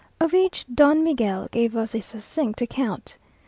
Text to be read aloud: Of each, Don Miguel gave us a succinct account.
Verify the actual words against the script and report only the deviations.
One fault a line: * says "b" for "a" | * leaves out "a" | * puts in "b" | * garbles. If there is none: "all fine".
all fine